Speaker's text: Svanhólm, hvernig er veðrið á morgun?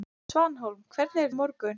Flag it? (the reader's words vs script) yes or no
yes